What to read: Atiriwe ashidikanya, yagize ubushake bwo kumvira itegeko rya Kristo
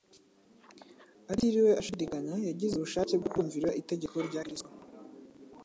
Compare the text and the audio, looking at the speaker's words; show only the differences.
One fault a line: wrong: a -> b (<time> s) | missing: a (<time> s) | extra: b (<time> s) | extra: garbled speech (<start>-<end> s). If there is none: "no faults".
no faults